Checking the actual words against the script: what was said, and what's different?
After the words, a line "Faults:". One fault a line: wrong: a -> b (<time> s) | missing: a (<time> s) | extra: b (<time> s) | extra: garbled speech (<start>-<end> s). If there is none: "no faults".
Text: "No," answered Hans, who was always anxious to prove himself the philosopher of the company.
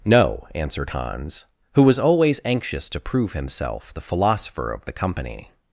"No," answered Hans, who was always anxious to prove himself the philosopher of the company.
Faults:
no faults